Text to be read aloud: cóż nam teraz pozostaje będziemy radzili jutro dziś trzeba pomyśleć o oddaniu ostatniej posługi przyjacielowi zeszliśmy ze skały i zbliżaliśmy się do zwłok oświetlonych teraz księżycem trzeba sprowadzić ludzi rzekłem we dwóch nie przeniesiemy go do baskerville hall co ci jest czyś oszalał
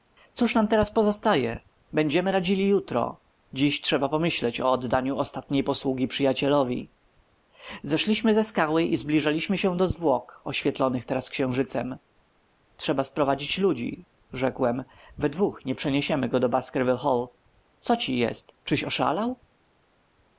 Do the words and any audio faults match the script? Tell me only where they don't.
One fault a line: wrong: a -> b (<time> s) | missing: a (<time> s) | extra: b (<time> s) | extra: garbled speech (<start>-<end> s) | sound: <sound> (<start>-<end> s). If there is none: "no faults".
no faults